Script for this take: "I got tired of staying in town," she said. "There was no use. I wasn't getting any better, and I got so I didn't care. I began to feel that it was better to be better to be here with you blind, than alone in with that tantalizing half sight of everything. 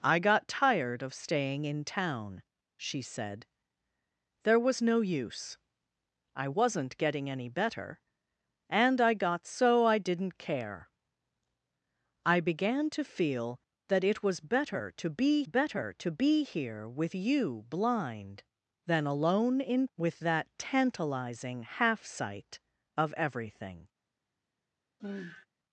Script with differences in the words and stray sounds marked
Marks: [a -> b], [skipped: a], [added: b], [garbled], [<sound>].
"I got tired of staying in town," she said. "There was no use. I wasn't getting any better, and I got so I didn't care. I began to feel that it was better to be better to be here with you blind, than alone in with that tantalizing half sight of everything. [sigh]